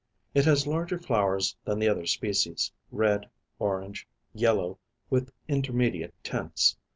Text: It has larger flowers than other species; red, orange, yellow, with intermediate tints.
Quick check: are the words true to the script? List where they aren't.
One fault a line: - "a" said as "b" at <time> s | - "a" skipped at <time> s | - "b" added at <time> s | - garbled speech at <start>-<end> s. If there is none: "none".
- "the" added at 1.8 s